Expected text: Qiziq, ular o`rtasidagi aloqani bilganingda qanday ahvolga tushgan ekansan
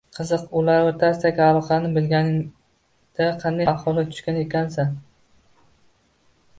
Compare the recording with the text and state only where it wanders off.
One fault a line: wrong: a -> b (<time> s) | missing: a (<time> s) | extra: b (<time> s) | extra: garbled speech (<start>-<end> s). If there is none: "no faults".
no faults